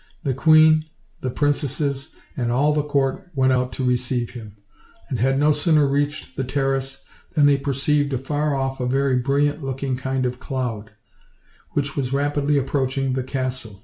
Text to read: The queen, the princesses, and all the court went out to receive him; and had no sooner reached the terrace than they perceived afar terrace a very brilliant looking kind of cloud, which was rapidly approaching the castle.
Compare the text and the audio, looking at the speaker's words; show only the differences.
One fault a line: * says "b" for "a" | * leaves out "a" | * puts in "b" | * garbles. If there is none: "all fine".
* says "off" for "terrace"